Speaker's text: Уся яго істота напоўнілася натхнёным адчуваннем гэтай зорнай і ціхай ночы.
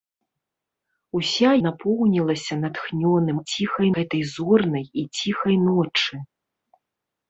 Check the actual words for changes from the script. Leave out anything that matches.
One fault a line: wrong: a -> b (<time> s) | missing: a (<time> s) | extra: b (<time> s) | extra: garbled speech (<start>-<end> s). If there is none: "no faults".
missing: яго істота (1.5 s)
wrong: адчуваннем -> ціхай (3.5 s)